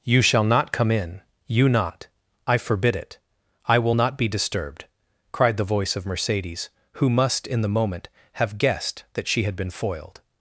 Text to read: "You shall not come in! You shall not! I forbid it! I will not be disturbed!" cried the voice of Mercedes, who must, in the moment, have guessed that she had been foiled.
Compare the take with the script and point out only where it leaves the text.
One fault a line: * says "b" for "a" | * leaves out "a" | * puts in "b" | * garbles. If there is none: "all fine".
* leaves out "shall"